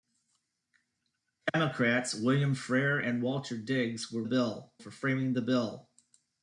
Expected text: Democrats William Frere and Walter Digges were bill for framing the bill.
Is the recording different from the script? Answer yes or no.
no